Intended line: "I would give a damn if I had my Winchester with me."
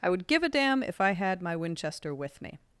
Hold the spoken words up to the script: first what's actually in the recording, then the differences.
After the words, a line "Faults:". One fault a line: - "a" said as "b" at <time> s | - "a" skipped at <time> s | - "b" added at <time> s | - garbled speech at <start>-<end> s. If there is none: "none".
"I would give a damn if I had my Winchester with me."
Faults:
none